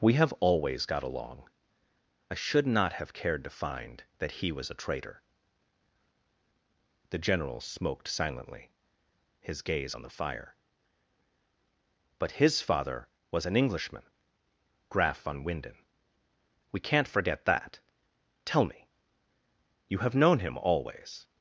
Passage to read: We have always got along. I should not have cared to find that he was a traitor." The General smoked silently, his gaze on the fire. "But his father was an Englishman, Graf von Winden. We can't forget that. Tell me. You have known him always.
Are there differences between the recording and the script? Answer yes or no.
no